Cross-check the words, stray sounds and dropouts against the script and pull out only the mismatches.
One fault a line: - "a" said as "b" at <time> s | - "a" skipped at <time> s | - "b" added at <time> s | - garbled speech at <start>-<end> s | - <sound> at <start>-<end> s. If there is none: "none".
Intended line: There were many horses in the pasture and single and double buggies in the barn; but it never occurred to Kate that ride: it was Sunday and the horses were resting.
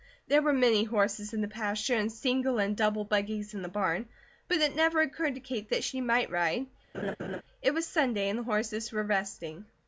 - "she might" added at 5.8 s
- laugh at 6.9-7.4 s